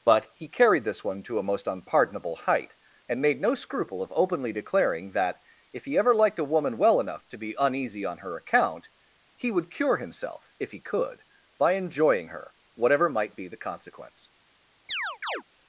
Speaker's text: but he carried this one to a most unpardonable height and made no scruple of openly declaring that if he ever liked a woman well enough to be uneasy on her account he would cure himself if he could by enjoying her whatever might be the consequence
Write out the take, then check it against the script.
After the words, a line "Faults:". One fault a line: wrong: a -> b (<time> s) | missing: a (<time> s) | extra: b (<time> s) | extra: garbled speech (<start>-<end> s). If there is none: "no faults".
but he carried this one to a most unpardonable height and made no scruple of openly declaring that if he ever liked a woman well enough to be uneasy on her account he would cure himself if he could by enjoying her whatever might be the consequence
Faults:
no faults